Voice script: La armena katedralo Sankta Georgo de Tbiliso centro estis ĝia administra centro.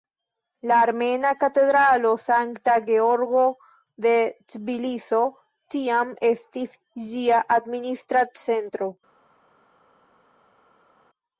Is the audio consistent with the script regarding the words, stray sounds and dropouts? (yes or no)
no